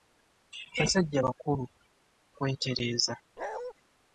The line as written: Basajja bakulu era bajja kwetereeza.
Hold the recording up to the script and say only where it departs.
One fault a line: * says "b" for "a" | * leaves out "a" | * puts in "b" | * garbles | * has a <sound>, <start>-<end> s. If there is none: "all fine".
* leaves out "era bajja"
* has a bark, 3.4-3.7 s